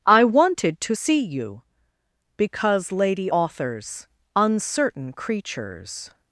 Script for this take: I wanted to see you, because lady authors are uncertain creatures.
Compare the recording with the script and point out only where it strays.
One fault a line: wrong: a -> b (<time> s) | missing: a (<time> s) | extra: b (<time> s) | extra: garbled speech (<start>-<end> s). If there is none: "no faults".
missing: are (4.1 s)